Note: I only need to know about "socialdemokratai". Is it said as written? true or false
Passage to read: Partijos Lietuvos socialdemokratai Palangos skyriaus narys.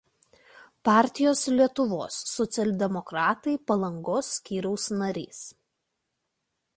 true